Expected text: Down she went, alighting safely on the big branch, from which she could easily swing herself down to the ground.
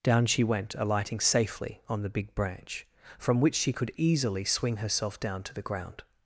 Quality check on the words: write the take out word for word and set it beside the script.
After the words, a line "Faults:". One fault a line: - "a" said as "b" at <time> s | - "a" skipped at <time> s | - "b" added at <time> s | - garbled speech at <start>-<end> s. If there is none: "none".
Down she went, alighting safely on the big branch, from which she could easily swing herself down to the ground.
Faults:
none